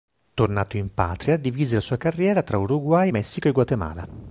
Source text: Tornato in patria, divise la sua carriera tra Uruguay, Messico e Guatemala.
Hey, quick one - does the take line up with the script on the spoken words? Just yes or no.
yes